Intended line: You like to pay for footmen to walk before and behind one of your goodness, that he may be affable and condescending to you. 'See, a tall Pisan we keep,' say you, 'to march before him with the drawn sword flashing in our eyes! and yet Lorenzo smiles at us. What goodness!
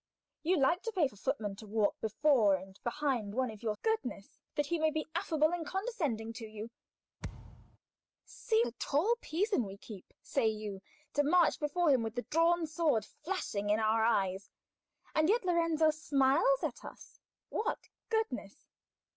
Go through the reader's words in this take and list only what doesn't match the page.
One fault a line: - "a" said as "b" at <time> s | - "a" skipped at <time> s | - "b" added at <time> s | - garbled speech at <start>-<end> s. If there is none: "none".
none